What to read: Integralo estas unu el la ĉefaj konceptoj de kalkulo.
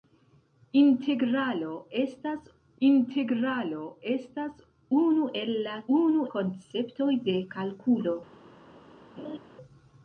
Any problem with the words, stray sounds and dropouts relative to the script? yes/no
yes